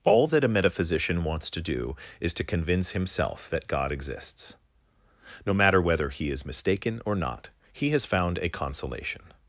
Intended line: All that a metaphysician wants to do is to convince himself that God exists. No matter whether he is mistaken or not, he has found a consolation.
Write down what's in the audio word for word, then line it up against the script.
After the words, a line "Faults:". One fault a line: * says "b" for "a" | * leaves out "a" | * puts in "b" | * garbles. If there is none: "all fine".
All that a metaphysician wants to do is to convince himself that God exists. No matter whether he is mistaken or not, he has found a consolation.
Faults:
all fine